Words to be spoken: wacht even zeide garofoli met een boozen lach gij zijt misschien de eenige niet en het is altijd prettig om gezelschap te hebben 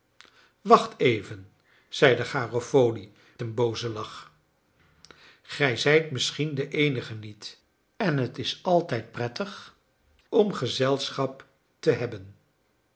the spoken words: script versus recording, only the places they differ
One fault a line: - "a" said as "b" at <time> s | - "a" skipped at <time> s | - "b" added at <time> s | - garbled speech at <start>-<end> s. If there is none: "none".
- "met" skipped at 3.1 s